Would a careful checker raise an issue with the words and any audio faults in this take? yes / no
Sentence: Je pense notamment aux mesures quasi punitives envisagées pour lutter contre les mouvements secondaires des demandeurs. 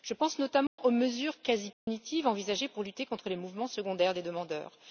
yes